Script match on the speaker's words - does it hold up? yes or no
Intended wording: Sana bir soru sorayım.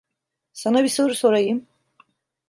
yes